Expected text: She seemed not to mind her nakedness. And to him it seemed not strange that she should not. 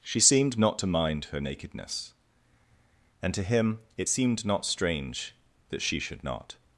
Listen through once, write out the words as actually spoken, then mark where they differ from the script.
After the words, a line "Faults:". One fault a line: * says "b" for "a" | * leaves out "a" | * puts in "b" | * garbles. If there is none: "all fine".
She seemed not to mind her nakedness. And to him it seemed not strange that she should not.
Faults:
all fine